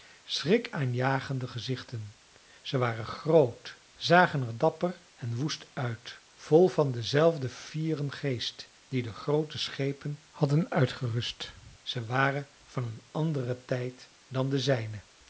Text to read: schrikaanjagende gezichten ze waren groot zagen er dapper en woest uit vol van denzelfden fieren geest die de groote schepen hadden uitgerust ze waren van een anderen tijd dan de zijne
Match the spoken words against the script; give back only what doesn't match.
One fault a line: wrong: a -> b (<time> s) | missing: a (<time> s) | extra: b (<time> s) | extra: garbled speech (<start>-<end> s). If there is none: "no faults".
no faults